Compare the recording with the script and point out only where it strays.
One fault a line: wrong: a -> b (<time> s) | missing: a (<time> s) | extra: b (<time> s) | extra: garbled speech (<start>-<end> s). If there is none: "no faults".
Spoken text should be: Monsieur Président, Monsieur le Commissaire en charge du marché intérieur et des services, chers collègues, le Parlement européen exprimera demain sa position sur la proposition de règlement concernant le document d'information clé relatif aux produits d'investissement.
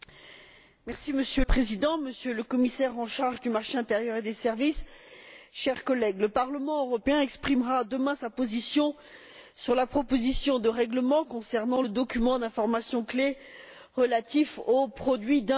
no faults